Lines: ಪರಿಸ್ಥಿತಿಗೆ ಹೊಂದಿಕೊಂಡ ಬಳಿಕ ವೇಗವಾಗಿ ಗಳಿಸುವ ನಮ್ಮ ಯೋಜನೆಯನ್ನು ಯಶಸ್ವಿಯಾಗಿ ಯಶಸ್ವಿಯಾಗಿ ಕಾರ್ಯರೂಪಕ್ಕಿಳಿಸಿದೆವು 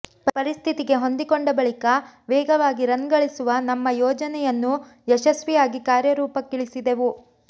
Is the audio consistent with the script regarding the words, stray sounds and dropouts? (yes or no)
no